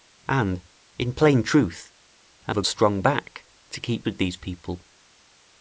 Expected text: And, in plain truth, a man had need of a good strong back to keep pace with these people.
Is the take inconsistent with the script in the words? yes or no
yes